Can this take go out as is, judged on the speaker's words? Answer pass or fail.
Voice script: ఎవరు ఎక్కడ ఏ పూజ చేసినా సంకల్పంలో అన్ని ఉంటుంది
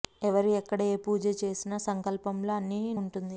pass